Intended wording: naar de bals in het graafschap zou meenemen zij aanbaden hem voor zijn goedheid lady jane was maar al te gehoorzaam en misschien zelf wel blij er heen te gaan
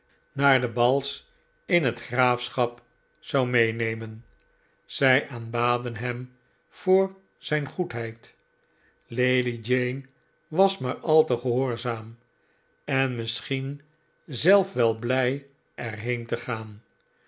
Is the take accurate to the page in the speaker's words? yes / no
yes